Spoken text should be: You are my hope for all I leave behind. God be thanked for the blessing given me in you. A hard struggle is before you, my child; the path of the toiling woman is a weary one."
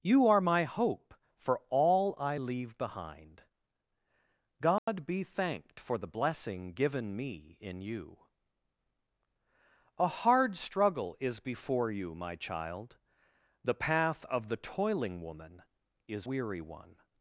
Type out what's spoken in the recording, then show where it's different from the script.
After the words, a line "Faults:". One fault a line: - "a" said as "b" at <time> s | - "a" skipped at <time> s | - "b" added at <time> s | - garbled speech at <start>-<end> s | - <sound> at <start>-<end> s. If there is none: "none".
You are my hope for all I leave behind. God be thanked for the blessing given me in you. A hard struggle is before you, my child; the path of the toiling woman is weary one."
Faults:
- dropout at 4.8-4.9 s
- "a" skipped at 16.3 s